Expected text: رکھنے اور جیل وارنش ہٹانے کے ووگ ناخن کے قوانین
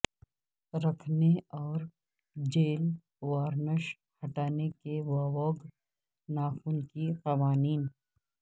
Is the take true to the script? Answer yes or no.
yes